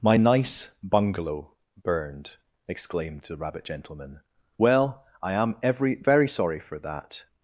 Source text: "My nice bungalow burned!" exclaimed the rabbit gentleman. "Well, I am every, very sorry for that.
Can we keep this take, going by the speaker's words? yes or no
yes